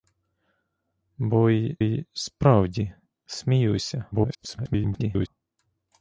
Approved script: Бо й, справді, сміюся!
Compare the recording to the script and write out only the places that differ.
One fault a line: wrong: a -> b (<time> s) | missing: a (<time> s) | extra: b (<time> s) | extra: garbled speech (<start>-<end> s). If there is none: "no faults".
extra: й (1.8 s)
extra: garbled speech (4.1-5.3 s)